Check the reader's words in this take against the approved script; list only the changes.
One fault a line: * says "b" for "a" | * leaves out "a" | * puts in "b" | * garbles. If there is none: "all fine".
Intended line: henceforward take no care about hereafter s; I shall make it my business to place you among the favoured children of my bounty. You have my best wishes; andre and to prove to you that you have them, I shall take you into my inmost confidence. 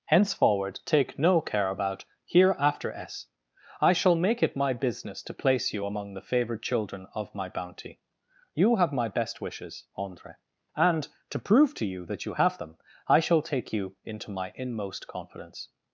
all fine